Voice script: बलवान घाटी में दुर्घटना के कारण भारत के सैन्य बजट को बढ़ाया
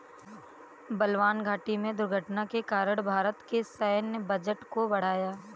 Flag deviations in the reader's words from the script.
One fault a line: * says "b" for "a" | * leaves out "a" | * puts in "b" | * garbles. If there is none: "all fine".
all fine